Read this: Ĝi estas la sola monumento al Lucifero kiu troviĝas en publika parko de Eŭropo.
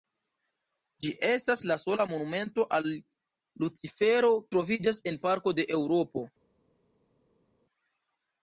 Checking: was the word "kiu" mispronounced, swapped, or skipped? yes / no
yes